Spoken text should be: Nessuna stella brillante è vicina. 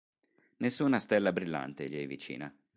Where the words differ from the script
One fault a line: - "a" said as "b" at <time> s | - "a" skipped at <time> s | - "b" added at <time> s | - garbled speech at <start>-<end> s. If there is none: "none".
- "gli" added at 1.9 s